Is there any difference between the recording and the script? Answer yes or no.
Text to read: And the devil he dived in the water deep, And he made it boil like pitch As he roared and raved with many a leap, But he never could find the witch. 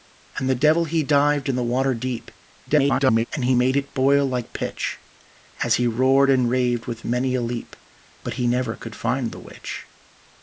yes